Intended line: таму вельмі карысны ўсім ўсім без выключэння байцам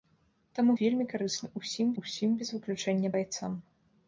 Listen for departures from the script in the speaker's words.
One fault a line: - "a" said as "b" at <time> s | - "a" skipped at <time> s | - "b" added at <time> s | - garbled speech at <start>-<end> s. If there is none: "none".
none